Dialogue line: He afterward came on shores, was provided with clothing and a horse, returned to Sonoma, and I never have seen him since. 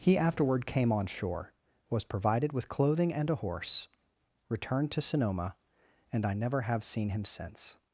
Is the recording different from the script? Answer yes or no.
yes